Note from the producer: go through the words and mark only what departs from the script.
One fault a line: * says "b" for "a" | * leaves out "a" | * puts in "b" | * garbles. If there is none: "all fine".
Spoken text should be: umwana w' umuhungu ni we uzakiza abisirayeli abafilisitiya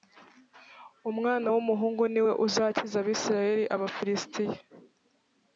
all fine